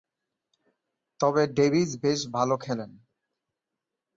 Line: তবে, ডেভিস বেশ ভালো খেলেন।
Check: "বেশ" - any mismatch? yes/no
no